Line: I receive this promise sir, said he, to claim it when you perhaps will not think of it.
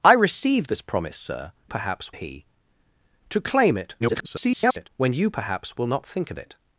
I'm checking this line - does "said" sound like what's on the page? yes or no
no